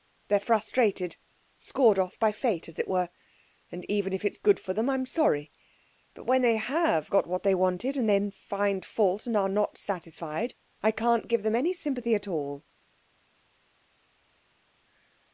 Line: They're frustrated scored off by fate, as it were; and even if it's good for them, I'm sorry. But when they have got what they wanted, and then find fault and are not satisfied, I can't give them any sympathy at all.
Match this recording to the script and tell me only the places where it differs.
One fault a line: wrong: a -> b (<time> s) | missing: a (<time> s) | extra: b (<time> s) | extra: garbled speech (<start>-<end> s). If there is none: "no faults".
no faults